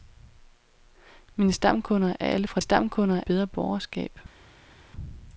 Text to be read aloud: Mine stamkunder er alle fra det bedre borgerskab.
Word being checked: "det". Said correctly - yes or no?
no